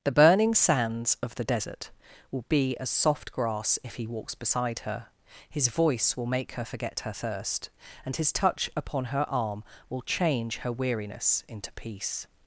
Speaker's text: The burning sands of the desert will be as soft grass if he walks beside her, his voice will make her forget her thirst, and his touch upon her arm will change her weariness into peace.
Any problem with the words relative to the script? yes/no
no